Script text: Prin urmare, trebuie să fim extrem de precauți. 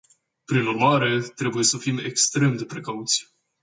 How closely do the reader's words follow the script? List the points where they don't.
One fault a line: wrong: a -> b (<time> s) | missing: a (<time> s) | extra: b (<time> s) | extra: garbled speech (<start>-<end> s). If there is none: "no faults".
no faults